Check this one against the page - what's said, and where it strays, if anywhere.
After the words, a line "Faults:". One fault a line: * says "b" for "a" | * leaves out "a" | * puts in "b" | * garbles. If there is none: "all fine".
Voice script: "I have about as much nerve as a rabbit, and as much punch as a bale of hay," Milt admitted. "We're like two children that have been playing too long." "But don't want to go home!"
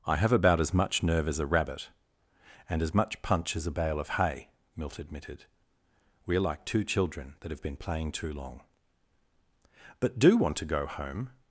"I have about as much nerve as a rabbit, and as much punch as a bale of hay," Milt admitted. "We're like two children that have been playing too long." "But do want to go home!"
Faults:
* says "do" for "don't"